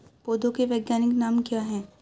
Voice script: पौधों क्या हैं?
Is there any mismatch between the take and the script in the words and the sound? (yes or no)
yes